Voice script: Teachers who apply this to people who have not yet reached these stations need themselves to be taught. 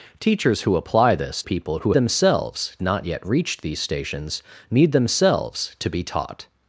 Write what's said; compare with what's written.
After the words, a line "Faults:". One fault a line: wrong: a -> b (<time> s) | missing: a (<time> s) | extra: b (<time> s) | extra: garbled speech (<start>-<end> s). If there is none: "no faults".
Teachers who apply this people who themselves not yet reached these stations need themselves to be taught.
Faults:
missing: to (1.4 s)
wrong: have -> themselves (1.9 s)